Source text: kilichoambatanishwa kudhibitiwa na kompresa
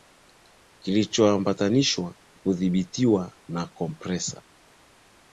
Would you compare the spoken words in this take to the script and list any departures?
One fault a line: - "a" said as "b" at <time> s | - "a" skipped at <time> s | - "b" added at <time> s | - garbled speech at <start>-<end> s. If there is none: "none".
none